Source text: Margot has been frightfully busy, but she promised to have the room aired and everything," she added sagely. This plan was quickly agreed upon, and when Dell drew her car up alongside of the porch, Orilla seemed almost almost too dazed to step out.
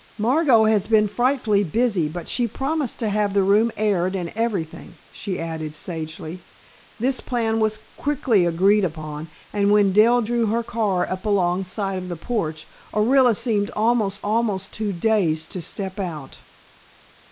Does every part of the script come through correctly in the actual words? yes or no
yes